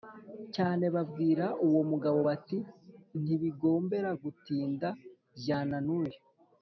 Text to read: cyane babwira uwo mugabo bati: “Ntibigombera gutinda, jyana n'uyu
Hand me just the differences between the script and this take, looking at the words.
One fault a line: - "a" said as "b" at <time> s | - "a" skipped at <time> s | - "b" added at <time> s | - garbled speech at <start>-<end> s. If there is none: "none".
none